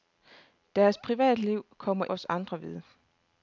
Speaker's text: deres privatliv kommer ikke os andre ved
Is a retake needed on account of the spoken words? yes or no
yes